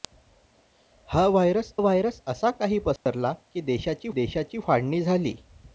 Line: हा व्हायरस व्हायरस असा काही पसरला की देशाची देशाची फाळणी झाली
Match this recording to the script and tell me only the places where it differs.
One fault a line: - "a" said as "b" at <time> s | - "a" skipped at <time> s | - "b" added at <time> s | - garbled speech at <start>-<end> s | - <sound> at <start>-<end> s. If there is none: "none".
- dropout at 3.0-3.1 s